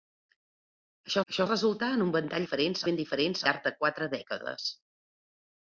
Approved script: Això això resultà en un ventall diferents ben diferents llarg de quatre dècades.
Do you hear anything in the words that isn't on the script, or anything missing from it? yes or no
no